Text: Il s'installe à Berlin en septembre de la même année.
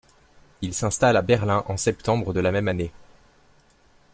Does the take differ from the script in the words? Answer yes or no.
no